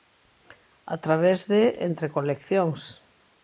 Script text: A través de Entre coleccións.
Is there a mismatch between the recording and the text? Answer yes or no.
no